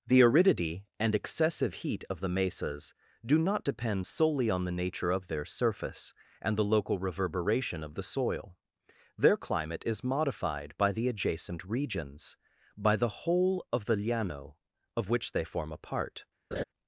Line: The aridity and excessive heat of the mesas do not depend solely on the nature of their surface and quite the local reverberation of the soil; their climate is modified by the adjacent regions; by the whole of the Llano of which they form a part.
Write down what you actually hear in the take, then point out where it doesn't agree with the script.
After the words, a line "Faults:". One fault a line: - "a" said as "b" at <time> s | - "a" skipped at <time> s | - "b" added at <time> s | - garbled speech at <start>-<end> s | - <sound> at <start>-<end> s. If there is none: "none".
The aridity and excessive heat of the mesas do not depend solely on the nature of their surface and the local reverberation of the soil; their climate is modified by the adjacent regions; by the whole of the Llano of which they form a part.
Faults:
- "quite" skipped at 6.6 s
- laugh at 16.5-16.6 s